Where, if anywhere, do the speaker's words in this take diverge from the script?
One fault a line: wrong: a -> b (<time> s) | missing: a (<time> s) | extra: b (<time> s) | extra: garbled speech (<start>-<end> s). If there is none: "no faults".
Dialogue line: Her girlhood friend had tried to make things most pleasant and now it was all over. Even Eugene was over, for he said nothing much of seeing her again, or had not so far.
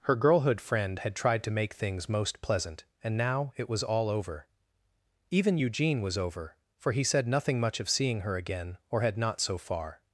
no faults